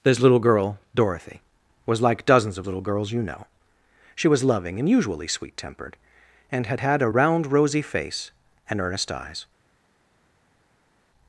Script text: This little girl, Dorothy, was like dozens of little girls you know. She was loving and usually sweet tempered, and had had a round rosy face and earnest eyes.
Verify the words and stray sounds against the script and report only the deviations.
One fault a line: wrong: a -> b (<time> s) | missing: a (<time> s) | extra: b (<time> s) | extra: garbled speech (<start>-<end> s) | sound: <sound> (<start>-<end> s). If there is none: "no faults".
no faults